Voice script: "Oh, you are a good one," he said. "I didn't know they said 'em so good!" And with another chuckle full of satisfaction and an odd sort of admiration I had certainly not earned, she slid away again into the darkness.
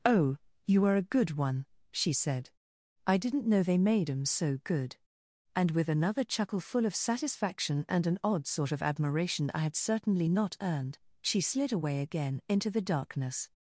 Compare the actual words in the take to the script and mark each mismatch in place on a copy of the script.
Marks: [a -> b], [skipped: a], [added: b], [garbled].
"Oh, you are a good one," [he -> she] said. "I didn't know they [said -> made] 'em so good!" And with another chuckle full of satisfaction and an odd sort of admiration I had certainly not earned, she slid away again into the darkness.